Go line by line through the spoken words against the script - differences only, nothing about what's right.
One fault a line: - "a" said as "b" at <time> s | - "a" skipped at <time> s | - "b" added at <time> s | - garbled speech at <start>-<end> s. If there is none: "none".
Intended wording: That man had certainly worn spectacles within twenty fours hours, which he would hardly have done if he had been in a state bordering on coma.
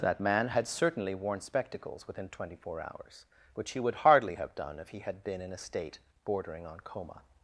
- "fours" said as "four" at 2.5 s